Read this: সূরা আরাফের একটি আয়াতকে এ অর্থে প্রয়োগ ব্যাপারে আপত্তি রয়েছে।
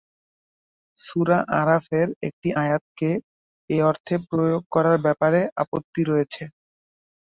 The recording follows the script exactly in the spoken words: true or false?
false